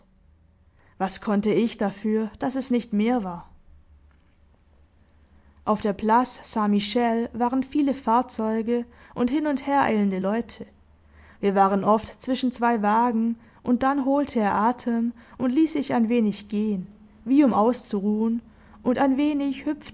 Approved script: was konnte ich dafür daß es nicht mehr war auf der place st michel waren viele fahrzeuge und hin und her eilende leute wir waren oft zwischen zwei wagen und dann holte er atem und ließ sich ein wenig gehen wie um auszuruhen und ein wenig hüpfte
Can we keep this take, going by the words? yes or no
yes